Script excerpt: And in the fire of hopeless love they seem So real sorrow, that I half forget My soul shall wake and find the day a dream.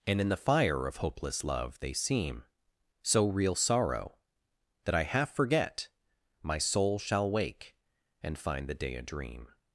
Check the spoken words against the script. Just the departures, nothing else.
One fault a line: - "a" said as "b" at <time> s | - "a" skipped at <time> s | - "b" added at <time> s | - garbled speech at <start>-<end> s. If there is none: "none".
none